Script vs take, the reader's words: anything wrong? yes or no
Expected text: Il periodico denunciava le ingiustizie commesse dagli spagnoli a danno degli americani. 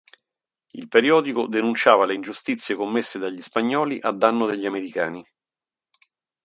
no